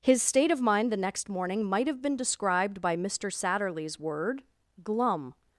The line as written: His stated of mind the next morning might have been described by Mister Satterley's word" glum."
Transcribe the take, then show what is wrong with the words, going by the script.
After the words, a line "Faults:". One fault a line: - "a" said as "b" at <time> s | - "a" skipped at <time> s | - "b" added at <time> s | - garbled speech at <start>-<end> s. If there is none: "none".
His state of mind the next morning might have been described by Mister Satterley's word" glum."
Faults:
- "stated" said as "state" at 0.2 s